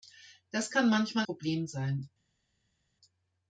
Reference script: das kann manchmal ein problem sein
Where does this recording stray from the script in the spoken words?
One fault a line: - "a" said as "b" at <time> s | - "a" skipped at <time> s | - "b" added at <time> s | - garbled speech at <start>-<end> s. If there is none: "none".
- "ein" skipped at 1.3 s